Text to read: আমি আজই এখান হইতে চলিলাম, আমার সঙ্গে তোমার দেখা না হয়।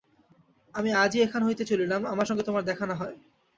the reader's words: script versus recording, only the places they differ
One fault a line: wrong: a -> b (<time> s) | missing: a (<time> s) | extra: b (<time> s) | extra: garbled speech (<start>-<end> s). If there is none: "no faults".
no faults